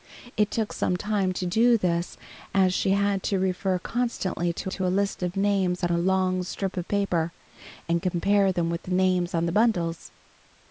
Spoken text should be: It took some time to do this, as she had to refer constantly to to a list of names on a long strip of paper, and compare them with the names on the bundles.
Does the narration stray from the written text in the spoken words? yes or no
no